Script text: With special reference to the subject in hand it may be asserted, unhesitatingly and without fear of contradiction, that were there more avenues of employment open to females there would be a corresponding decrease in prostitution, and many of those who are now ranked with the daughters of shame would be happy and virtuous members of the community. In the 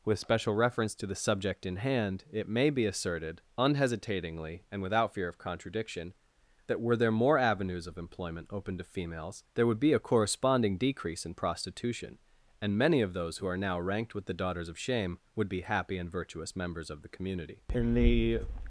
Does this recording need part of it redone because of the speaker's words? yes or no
no